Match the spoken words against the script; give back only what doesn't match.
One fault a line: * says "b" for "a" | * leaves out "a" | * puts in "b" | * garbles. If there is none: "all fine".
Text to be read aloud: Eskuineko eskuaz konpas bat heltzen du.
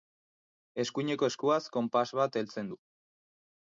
all fine